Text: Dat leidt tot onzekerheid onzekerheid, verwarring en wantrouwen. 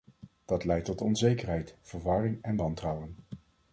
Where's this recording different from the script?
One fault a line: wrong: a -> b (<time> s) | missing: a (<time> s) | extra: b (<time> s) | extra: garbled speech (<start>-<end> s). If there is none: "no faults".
missing: onzekerheid (1.8 s)